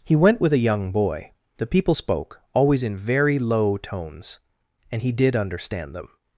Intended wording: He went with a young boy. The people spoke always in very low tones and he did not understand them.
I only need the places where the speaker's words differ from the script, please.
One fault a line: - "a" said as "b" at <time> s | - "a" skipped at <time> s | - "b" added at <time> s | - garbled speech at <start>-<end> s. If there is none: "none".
- "not" skipped at 5.4 s